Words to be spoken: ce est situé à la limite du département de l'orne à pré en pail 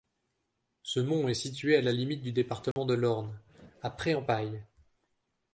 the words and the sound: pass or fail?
fail